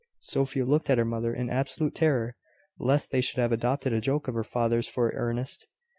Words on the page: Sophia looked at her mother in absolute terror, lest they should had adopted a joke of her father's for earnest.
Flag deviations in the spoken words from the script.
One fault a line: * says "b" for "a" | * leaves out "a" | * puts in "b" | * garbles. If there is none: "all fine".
* says "have" for "had"